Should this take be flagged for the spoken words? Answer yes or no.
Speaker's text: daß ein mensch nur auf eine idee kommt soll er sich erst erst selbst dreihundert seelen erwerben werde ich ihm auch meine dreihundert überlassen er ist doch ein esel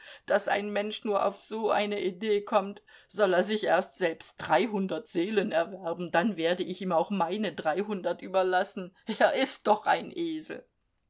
yes